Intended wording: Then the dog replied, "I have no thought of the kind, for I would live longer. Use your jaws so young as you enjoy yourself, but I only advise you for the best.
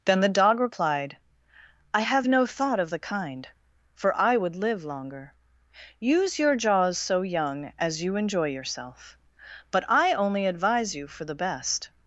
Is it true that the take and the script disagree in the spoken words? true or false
false